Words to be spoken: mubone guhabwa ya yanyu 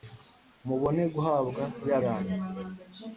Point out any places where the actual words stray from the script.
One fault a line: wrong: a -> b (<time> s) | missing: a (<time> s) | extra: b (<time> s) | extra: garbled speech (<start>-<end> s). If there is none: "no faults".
no faults